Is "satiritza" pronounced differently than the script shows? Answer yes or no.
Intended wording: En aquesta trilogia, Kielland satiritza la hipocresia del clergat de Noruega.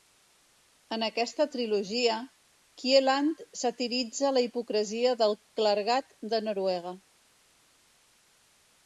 no